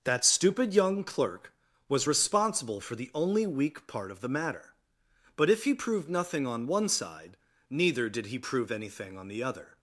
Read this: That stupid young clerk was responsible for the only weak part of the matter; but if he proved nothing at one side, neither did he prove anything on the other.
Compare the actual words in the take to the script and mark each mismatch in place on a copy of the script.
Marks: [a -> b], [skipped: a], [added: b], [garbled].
That stupid young clerk was responsible for the only weak part of the matter; but if he proved nothing [at -> on] one side, neither did he prove anything on the other.